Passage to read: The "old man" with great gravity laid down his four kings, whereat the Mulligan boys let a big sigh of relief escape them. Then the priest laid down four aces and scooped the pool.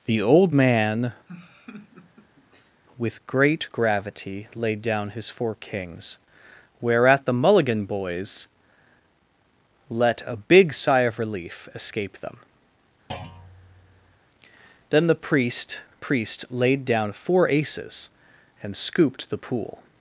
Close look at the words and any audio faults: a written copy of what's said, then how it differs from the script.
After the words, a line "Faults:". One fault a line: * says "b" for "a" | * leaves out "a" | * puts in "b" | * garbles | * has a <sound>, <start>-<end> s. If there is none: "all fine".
The "old man" with great gravity laid down his four kings, whereat the Mulligan boys let a big sigh of relief escape them. Then the priest priest laid down four aces and scooped the pool.
Faults:
* has a laugh, 1.3-2.8 s
* has a thud, 13.1-14.2 s
* puts in "priest"